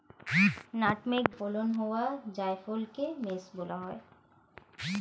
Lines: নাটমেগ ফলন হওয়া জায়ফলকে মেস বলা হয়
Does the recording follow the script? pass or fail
pass